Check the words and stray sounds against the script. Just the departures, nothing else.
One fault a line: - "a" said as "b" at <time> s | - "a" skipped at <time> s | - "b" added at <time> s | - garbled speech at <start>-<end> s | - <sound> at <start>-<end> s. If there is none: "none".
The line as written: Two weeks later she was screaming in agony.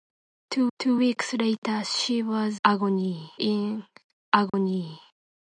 - "two" added at 0.8 s
- "screaming" said as "agony" at 2.6 s
- dropout at 4.5-4.5 s